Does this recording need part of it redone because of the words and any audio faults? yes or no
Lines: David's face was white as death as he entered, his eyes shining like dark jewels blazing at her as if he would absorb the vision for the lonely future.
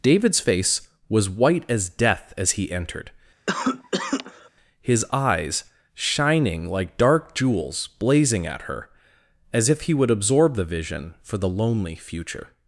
yes